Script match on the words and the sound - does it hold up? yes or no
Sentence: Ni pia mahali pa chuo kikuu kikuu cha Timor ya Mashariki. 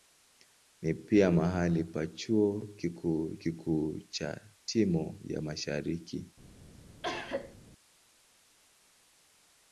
no